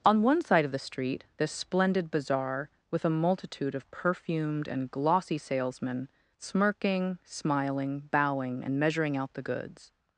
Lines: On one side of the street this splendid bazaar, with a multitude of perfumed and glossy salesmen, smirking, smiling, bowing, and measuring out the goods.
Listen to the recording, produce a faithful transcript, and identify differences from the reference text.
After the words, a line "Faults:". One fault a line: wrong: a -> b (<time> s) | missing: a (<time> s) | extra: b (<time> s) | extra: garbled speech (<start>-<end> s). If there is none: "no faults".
On one side of the street this splendid bazaar, with a multitude of perfumed and glossy salesmen, smirking, smiling, bowing, and measuring out the goods.
Faults:
no faults